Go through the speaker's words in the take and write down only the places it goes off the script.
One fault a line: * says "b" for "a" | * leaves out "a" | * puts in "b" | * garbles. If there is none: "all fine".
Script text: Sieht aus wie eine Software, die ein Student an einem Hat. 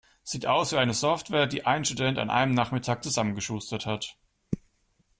* puts in "Nachmittag zusammengeschustert"